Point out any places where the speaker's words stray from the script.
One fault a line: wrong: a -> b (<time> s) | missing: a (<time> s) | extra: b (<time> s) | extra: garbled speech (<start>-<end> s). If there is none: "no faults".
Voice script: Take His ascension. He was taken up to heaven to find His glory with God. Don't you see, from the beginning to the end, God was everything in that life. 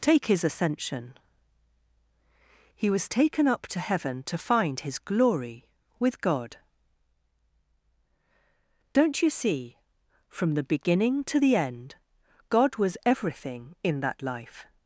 no faults